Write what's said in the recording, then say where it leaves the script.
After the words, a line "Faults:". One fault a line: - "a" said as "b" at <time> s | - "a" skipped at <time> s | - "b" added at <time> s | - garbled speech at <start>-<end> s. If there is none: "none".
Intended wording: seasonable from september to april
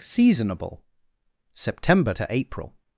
seasonable september to april
Faults:
- "from" skipped at 0.8 s